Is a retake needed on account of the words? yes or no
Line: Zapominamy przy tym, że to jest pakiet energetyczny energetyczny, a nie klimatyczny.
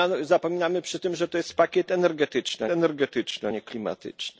no